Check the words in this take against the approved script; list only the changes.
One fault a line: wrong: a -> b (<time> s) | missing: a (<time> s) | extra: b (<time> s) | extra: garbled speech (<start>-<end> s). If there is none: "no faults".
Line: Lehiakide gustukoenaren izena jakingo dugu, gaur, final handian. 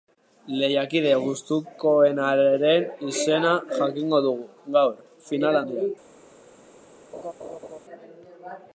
no faults